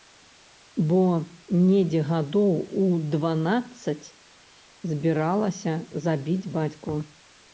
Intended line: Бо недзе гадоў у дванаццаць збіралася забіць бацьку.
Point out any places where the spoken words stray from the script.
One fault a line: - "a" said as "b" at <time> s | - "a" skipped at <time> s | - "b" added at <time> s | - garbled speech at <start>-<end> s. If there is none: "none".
none